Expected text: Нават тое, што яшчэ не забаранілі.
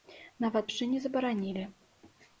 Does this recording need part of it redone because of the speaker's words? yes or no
yes